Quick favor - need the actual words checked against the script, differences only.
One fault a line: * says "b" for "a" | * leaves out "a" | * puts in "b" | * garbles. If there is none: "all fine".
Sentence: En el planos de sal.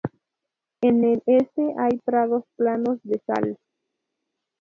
* puts in "este hay prados"